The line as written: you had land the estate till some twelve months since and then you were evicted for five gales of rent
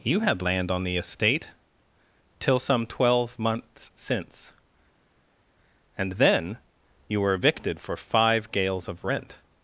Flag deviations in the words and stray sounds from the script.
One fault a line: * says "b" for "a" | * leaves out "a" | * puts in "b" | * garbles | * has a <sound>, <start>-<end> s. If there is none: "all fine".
* puts in "on"